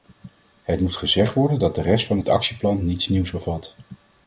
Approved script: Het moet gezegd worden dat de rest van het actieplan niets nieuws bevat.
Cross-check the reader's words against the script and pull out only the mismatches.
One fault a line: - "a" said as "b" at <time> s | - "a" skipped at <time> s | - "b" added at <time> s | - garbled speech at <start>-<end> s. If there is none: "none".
none